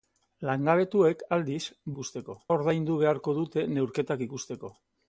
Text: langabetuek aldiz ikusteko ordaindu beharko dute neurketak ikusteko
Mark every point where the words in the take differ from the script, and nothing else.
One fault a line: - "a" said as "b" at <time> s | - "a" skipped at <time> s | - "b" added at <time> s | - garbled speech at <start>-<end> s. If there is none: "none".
none